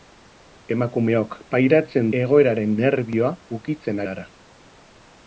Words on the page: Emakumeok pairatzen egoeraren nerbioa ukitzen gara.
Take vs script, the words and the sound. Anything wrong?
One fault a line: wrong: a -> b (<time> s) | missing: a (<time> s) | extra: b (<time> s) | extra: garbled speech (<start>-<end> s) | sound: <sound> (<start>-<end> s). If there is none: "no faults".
no faults